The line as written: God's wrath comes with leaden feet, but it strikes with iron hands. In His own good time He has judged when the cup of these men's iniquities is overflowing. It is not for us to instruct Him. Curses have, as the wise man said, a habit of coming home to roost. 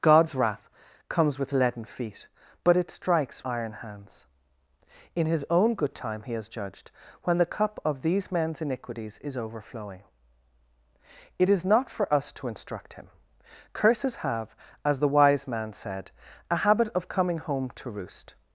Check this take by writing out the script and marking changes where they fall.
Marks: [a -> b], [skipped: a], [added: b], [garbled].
God's wrath comes with leaden feet, but it strikes [skipped: with] iron hands. In His own good time He has judged when the cup of these men's iniquities is overflowing. It is not for us to instruct Him. Curses have, as the wise man said, a habit of coming home to roost.